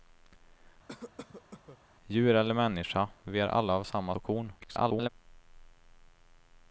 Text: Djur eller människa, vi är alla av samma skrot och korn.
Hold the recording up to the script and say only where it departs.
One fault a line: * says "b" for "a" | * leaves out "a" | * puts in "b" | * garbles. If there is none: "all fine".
* leaves out "skrot"
* garbles